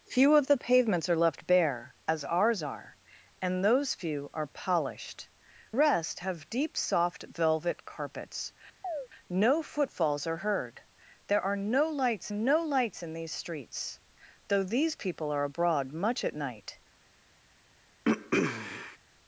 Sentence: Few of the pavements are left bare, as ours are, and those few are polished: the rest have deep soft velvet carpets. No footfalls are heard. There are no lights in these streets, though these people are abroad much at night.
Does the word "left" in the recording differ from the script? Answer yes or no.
no